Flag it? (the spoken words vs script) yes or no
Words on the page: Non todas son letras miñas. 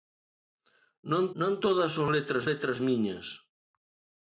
yes